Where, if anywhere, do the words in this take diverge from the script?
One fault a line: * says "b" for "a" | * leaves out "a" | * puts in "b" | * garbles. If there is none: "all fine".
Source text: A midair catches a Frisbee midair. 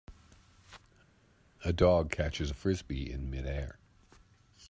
* says "dog" for "midair"
* puts in "in"